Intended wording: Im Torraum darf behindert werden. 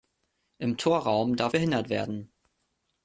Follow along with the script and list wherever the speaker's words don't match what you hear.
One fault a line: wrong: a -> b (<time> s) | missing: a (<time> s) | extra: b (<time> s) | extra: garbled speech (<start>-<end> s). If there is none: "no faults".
no faults